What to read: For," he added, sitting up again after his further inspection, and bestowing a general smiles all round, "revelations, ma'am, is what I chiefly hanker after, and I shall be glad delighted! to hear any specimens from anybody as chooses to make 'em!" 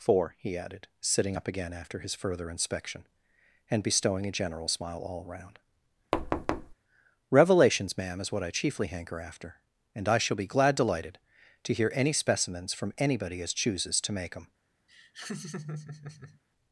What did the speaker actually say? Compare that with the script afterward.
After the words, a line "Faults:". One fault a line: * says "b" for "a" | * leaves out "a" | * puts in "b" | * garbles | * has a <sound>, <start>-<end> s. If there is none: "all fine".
For," he added, sitting up again after his further inspection, and bestowing a general smile all round, "revelations, ma'am, is what I chiefly hanker after, and I shall be glad delighted! to hear any specimens from anybody as chooses to make 'em!"
Faults:
* says "smile" for "smiles"
* has a thud, 6.1-6.7 s
* has a laugh, 14.9-16.4 s